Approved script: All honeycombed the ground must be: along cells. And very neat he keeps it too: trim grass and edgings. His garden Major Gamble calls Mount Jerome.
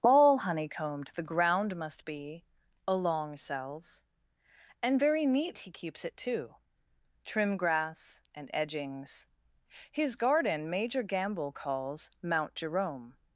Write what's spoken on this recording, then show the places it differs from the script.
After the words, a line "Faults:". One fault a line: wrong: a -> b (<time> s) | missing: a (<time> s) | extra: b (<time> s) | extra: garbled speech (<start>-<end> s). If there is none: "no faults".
All honeycombed the ground must be: along cells. And very neat he keeps it too: trim grass and edgings. His garden Major Gamble calls Mount Jerome.
Faults:
no faults